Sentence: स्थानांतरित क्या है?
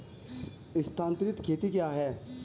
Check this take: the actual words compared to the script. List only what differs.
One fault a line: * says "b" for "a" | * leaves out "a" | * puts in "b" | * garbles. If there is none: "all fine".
* puts in "खेती"